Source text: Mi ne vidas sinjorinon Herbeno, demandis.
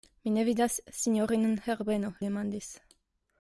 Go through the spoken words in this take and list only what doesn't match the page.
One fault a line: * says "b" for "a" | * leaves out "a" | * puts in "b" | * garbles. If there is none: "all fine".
all fine